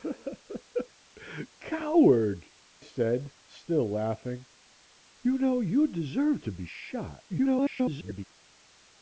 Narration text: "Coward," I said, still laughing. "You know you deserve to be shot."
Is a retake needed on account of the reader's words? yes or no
yes